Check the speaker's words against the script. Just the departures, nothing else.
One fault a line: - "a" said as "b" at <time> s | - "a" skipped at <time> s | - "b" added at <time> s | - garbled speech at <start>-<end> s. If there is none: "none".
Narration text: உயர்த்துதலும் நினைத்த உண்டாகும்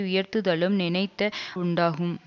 none